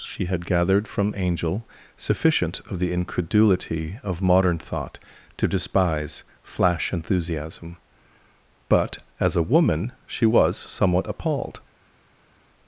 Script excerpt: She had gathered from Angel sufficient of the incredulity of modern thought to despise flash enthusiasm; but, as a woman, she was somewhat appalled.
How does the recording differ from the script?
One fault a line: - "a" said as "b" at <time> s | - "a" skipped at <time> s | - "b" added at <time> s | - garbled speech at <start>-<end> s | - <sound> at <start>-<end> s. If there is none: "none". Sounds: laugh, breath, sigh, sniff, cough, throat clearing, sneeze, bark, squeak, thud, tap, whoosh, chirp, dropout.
none